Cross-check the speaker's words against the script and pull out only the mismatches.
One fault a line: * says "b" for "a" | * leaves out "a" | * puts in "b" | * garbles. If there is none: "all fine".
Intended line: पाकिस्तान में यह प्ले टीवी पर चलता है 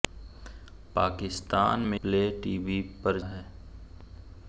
* leaves out "यह"
* leaves out "चलता"